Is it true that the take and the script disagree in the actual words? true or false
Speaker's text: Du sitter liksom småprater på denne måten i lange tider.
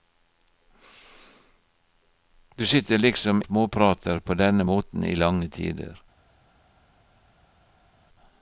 false